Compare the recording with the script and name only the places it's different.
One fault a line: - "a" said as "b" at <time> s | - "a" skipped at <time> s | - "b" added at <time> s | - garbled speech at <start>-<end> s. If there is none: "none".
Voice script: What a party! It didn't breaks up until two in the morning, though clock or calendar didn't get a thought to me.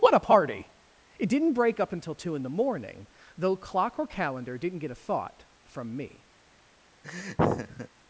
- "breaks" said as "break" at 1.5 s
- "to" said as "from" at 5.6 s